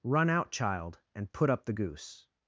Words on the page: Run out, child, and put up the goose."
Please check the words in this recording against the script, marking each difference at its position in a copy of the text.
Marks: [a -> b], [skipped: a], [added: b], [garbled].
Run out, child, and put up the goose."